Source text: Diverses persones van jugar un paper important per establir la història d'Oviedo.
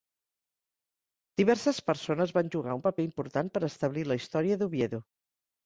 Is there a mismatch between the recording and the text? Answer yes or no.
no